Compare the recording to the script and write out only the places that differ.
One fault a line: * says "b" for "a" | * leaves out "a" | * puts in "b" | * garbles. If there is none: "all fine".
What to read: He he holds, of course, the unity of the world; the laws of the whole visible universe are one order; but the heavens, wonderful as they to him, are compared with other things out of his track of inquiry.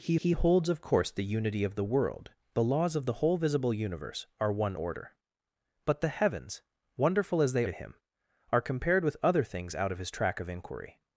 all fine